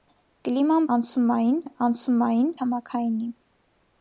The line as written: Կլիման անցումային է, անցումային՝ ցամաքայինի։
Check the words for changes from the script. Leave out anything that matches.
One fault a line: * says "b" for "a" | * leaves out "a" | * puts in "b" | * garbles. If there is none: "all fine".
all fine